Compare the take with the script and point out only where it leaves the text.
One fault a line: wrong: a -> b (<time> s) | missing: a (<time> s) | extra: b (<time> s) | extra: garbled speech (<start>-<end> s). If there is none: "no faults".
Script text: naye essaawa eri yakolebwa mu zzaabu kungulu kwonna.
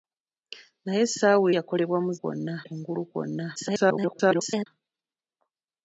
missing: eri (1.5 s)
wrong: zzaabu -> kwonna (2.2 s)
extra: garbled speech (3.6-4.7 s)